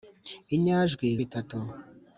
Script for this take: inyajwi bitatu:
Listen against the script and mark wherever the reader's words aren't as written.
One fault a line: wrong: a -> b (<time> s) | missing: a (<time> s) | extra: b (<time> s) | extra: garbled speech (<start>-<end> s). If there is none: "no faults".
no faults